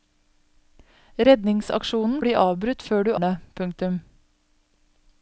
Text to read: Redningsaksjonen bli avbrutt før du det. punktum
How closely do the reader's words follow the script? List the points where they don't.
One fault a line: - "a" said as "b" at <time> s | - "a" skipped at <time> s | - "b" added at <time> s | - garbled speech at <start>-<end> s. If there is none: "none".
none